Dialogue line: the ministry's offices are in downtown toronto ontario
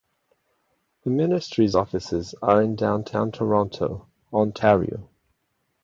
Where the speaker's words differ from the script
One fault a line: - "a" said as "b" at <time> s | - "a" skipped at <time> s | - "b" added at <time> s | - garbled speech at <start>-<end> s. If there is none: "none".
none